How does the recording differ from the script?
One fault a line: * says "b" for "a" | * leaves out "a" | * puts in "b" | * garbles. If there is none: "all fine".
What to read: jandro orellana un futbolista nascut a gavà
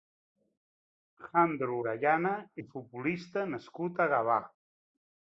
all fine